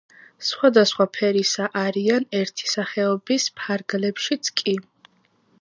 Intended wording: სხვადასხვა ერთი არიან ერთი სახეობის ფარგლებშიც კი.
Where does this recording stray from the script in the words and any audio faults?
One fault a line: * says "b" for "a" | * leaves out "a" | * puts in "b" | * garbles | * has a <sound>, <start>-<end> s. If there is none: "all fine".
* says "ფერისა" for "ერთი"